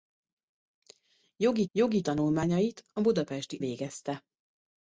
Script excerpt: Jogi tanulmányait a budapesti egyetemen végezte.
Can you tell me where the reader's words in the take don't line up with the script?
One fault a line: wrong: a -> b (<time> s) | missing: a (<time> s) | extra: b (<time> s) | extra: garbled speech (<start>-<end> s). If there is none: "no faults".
extra: jogi (1.7 s)
missing: egyetemen (3.6 s)